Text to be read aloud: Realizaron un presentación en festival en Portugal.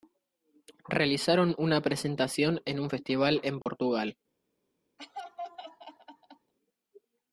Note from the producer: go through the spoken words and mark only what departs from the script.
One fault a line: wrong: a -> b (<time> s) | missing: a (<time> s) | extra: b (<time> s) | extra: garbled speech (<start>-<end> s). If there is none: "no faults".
wrong: un -> una (1.6 s)
extra: un (2.8 s)